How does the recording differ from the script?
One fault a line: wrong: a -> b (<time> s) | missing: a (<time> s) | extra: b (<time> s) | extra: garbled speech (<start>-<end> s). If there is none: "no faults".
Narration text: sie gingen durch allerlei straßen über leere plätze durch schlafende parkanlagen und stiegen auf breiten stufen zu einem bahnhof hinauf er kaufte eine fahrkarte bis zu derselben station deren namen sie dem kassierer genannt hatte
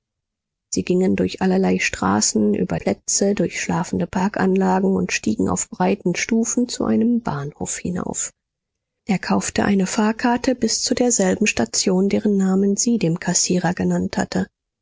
missing: leere (2.8 s)